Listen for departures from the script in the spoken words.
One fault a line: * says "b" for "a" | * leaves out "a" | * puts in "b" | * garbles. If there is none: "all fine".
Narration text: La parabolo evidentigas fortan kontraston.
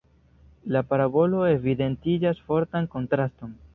all fine